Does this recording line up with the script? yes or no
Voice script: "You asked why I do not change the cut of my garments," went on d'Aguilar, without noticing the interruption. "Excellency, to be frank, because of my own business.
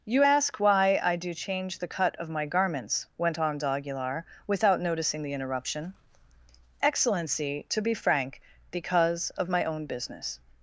no